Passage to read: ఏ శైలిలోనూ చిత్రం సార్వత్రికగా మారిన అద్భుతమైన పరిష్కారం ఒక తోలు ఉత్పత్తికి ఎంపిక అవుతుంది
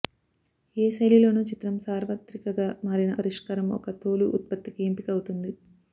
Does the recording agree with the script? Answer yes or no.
no